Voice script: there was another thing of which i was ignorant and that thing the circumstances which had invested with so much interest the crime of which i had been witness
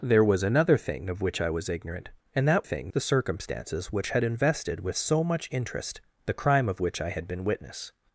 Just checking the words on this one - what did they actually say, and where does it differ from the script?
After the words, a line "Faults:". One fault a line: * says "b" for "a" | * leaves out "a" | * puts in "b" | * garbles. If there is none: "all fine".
there was another thing of which i was ignorant and that thing the circumstances which had invested with so much interest the crime of which i had been witness
Faults:
all fine